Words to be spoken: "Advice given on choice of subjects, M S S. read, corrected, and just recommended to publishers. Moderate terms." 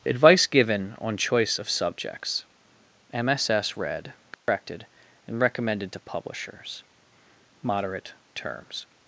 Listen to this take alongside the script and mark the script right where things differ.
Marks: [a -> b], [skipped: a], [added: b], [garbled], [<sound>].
"Advice given on choice of subjects, M S S. read, corrected, [dropout] and [skipped: just] recommended to publishers. Moderate terms."